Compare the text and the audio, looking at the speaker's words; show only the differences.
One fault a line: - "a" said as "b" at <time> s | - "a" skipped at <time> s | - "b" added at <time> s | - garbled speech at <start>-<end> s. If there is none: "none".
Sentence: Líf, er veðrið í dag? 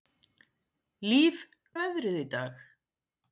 none